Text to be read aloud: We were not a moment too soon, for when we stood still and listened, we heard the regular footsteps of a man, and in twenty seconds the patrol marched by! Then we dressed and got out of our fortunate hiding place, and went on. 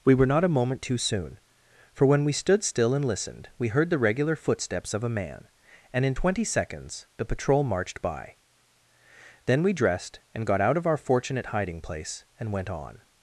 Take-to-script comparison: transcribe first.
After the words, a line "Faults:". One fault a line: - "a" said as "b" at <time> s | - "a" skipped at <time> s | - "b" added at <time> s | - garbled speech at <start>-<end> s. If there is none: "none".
We were not a moment too soon, for when we stood still and listened, we heard the regular footsteps of a man, and in twenty seconds the patrol marched by! Then we dressed and got out of our fortunate hiding place, and went on.
Faults:
none